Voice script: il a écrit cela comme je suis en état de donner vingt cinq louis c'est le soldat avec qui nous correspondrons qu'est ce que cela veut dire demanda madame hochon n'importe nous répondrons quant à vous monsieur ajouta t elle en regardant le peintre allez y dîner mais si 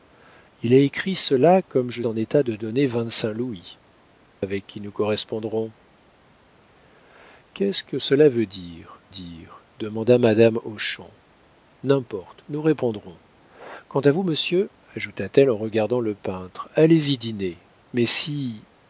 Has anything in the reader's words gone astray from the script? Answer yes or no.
yes